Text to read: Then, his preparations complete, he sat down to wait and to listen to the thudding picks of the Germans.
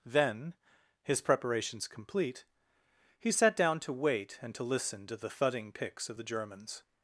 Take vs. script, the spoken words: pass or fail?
pass